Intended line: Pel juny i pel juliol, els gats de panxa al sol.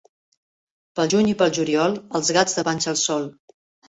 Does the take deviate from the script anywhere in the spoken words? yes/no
no